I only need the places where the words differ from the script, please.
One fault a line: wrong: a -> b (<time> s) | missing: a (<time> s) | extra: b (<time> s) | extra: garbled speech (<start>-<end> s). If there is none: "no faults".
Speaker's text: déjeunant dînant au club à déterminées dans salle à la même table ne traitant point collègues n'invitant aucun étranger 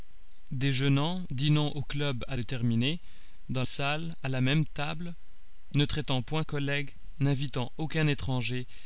no faults